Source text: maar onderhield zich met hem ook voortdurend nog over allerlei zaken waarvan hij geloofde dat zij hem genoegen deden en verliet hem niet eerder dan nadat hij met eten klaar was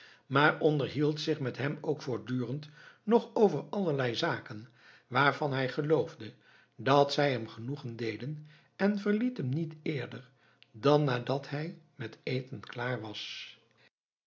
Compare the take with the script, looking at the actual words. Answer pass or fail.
pass